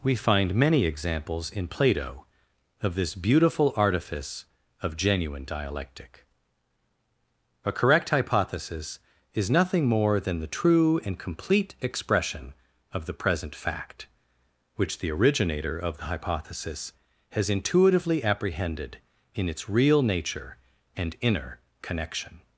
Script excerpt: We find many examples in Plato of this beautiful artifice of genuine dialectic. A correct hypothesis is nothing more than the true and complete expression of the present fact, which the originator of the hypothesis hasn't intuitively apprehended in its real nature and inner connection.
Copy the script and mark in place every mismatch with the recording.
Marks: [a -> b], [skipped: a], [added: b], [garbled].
We find many examples in Plato of this beautiful artifice of genuine dialectic. A correct hypothesis is nothing more than the true and complete expression of the present fact, which the originator of the hypothesis [hasn't -> has] intuitively apprehended in its real nature and inner connection.